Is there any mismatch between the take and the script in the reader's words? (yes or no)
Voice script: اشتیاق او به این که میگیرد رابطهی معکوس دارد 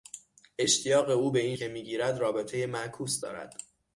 no